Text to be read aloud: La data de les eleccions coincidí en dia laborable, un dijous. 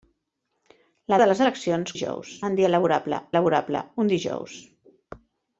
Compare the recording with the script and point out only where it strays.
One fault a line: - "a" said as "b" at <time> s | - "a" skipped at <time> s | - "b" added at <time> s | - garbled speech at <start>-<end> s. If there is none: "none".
- "data" skipped at 1.2 s
- "coincidí" said as "dijous" at 1.9 s
- "laborable" added at 3.4 s